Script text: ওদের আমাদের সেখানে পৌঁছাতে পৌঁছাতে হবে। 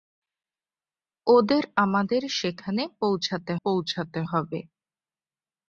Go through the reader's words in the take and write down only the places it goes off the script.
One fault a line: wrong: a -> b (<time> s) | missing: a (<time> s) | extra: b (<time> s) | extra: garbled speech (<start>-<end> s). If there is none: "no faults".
no faults